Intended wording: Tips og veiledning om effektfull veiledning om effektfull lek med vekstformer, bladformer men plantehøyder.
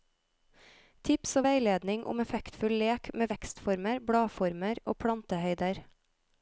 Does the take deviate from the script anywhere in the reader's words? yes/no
yes